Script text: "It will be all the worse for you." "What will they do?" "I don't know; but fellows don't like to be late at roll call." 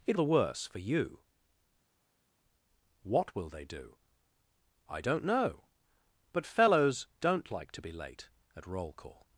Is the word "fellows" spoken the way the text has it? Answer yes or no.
yes